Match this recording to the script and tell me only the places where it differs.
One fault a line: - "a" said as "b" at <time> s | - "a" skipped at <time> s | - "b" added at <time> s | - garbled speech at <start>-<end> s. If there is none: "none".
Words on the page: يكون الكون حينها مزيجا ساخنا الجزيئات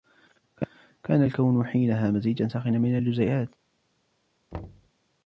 - "يكون" said as "كان" at 1.0 s
- "من" added at 2.8 s